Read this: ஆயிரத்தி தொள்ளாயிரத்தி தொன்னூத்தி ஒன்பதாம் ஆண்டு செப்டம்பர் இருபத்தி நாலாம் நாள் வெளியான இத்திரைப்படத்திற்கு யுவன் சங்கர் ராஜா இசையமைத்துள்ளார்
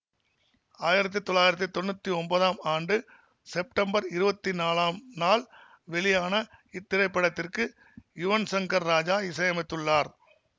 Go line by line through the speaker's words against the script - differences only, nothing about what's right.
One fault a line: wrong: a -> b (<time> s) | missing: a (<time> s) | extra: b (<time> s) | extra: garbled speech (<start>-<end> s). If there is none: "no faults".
no faults